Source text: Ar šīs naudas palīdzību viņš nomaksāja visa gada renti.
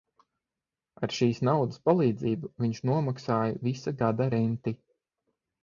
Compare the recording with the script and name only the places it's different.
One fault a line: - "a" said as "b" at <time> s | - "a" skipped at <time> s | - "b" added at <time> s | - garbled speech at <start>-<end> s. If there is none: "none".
none